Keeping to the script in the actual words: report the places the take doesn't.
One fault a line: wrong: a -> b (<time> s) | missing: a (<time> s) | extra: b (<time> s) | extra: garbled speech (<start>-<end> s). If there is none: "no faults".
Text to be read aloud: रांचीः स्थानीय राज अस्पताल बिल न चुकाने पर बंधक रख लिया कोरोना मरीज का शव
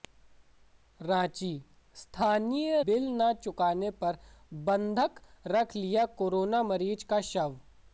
missing: राज अस्पताल (2.8 s)